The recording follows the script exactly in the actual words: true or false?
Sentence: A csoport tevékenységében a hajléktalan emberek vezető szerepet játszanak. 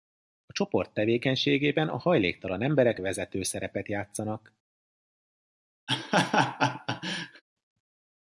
true